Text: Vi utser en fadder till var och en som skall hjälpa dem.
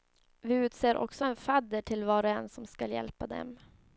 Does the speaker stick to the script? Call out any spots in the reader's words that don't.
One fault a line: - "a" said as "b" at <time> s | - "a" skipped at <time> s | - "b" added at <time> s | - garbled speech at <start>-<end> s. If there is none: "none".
- "också" added at 1.0 s